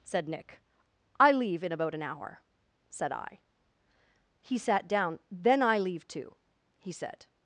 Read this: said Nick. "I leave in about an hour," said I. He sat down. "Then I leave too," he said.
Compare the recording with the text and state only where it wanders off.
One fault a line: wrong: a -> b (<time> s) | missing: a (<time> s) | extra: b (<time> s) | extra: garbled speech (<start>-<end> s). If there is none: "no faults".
no faults